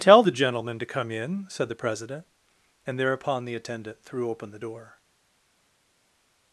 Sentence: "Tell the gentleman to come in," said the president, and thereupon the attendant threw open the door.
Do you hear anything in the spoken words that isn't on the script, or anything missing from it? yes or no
no